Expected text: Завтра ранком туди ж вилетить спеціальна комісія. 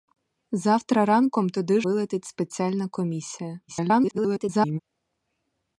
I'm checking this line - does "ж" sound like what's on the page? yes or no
no